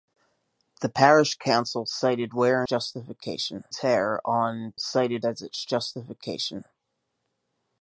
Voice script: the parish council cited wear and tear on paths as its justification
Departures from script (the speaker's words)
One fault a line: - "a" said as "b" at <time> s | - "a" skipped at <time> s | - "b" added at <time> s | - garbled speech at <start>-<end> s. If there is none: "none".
- "and" said as "justification" at 2.7 s
- "paths" said as "cited" at 4.8 s